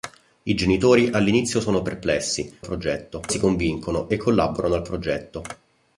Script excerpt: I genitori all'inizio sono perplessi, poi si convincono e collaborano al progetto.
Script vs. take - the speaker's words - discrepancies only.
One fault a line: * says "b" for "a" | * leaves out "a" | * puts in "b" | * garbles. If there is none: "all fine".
* says "progetto" for "poi"